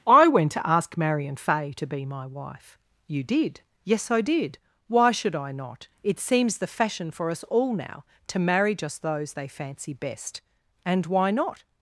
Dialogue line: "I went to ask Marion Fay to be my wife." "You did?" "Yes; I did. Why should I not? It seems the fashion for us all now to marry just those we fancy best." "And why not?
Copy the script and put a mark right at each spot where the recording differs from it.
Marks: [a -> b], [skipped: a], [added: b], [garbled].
"I went to ask Marion Fay to be my wife." "You did?" "Yes; I did. Why should I not? It seems the fashion for us all now to marry just those [we -> they] fancy best." "And why not?